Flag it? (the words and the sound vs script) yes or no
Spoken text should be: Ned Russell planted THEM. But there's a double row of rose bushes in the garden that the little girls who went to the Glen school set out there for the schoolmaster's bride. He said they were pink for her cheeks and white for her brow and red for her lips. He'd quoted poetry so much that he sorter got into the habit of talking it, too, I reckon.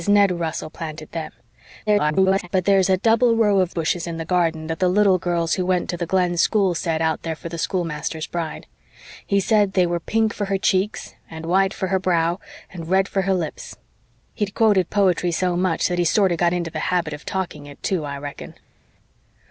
yes